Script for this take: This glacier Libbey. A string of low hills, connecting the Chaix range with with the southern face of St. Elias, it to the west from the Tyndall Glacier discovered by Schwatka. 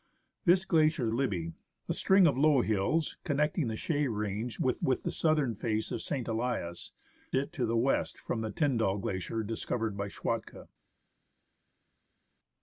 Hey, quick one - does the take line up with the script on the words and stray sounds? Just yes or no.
yes